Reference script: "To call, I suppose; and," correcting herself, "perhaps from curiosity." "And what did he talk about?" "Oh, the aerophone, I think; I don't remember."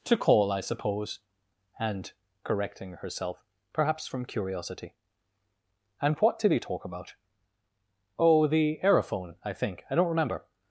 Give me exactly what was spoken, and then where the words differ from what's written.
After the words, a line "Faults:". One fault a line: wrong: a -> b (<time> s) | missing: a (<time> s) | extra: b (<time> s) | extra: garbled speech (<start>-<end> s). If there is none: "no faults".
"To call, I suppose; and," correcting herself, "perhaps from curiosity." "And what did he talk about?" "Oh, the aerophone, I think; I don't remember."
Faults:
no faults